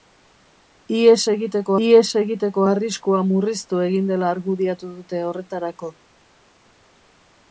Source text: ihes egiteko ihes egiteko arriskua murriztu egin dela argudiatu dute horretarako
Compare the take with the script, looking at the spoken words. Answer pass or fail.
pass